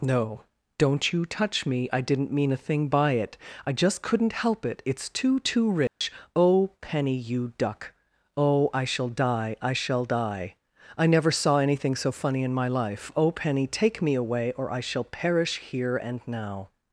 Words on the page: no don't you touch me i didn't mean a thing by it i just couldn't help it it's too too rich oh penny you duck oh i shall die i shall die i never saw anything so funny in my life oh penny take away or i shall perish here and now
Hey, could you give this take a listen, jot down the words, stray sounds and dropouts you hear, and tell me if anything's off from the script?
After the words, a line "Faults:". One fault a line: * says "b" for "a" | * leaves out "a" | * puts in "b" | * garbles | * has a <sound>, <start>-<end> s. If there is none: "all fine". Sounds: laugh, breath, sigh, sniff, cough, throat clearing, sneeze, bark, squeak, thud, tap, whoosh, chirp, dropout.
no don't you touch me i didn't mean a thing by it i just couldn't help it it's too too rich oh penny you duck oh i shall die i shall die i never saw anything so funny in my life oh penny take me away or i shall perish here and now
Faults:
* has a dropout, 5.9-6.0 s
* puts in "me"